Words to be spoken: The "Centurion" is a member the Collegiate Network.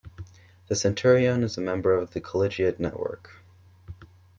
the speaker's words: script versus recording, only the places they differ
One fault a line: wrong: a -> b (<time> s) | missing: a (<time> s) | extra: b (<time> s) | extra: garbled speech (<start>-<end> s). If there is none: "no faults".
extra: of (1.9 s)